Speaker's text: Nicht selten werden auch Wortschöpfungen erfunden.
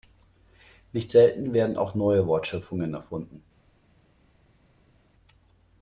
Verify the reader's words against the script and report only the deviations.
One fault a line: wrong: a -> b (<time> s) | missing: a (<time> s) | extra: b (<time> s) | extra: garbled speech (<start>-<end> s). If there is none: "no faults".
extra: neue (1.9 s)